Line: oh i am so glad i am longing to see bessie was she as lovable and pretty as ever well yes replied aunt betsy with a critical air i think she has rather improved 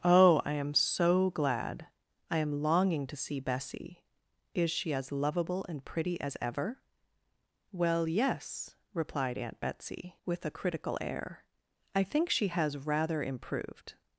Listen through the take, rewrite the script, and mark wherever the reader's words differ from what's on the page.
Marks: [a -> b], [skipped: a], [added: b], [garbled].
oh i am so glad i am longing to see bessie [was -> is] she as lovable and pretty as ever well yes replied aunt betsy with a critical air i think she has rather improved